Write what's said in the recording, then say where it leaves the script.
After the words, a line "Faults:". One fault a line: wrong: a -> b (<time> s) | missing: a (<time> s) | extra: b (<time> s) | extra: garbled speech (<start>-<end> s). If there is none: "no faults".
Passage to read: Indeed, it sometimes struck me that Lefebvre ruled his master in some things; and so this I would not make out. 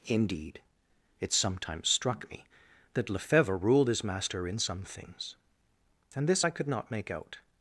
Indeed, it sometimes struck me that Lefebvre ruled his master in some things; and this I could not make out.
Faults:
missing: so (6.3 s)
wrong: would -> could (6.5 s)